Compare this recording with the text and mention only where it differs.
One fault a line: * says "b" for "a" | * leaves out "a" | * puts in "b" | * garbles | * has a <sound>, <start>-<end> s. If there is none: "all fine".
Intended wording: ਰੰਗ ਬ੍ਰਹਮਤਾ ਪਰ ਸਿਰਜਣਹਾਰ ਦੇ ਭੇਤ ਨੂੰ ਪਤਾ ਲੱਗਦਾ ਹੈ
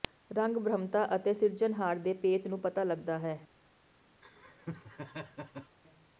* says "ਅਤੇ" for "ਪਰ"
* has a laugh, 4.2-5.8 s